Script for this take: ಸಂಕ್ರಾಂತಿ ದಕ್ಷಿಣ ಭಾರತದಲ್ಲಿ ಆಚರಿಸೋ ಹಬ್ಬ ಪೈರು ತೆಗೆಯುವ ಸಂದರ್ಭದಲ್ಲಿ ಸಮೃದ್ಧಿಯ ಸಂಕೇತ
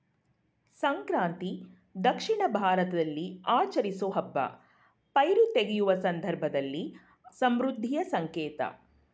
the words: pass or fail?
pass